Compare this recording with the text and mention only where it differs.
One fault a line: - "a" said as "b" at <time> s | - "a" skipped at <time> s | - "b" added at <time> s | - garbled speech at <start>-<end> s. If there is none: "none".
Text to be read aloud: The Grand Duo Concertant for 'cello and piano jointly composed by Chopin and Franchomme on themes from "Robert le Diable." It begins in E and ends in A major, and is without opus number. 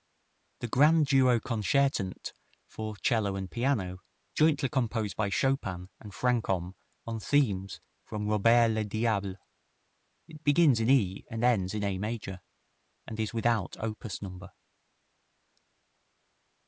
none